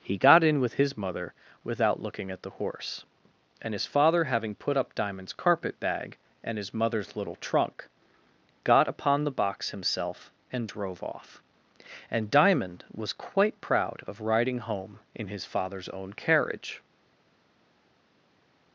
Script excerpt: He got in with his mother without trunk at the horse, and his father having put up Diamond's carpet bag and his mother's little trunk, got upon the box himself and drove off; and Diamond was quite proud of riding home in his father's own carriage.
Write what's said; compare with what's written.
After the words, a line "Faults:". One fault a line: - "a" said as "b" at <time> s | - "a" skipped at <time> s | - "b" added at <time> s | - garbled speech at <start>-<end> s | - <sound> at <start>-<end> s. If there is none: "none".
He got in with his mother without looking at the horse, and his father having put up Diamond's carpet bag and his mother's little trunk, got upon the box himself and drove off; and Diamond was quite proud of riding home in his father's own carriage.
Faults:
- "trunk" said as "looking" at 2.0 s